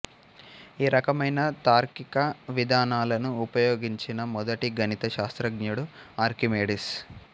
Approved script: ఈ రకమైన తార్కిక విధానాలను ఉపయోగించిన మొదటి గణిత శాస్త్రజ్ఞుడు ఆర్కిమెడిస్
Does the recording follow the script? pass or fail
pass